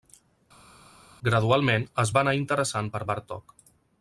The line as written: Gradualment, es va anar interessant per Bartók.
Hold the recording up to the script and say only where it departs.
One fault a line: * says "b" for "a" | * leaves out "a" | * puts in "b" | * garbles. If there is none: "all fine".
all fine